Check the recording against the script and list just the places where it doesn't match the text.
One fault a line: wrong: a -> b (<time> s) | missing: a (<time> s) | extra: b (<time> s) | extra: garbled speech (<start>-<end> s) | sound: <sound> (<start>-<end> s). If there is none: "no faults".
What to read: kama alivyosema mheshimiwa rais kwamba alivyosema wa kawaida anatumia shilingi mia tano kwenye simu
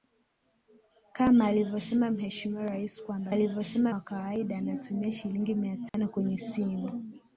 sound: dropout (5.9-5.9 s)